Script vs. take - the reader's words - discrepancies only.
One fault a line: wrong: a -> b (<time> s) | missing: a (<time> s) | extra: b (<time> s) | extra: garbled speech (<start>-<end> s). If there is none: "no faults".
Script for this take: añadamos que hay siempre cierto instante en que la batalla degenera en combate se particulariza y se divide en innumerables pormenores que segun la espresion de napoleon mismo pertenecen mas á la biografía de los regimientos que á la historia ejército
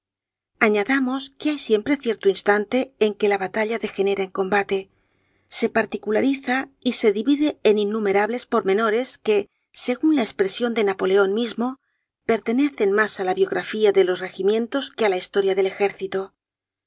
extra: del (15.5 s)